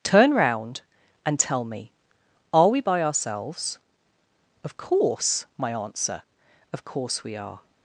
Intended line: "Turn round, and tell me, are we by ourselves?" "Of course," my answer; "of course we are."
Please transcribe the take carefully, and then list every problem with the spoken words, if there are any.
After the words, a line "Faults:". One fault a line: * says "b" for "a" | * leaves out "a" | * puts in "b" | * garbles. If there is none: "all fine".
"Turn round, and tell me, are we by ourselves?" "Of course," my answer; "of course we are."
Faults:
all fine